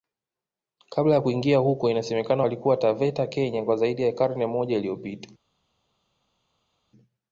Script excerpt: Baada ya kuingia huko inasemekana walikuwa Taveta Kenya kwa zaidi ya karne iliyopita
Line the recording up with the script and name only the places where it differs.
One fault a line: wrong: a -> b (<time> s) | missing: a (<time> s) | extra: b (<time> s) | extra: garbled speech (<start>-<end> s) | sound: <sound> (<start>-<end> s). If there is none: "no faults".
wrong: Baada -> Kabla (0.9 s)
extra: moja (4.5 s)